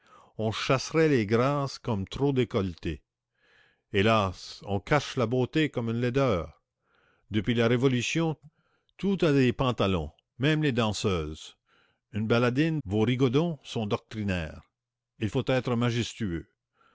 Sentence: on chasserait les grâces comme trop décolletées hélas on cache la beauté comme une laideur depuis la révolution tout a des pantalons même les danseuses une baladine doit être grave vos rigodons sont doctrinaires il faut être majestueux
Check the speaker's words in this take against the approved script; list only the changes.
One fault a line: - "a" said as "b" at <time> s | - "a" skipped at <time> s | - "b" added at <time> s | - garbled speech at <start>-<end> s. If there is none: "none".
- "doit être grave" skipped at 12.8 s